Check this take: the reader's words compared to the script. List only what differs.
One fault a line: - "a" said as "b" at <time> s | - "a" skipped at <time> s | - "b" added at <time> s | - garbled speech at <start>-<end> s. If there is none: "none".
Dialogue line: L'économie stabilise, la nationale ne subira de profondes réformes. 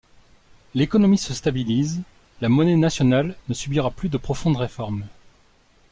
- "se" added at 1.2 s
- "monnaie" added at 2.5 s
- "plus" added at 3.9 s